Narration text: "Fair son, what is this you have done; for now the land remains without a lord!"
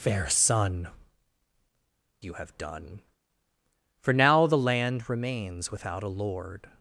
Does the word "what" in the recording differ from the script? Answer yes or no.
yes